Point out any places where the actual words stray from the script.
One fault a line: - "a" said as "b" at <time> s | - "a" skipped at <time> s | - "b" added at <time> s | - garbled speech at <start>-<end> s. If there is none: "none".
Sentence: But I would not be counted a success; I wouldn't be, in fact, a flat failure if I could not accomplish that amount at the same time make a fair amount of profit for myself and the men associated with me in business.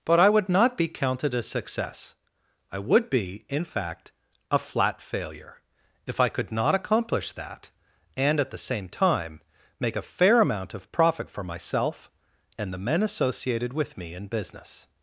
- "wouldn't" said as "would" at 2.8 s
- "amount" said as "and" at 8.2 s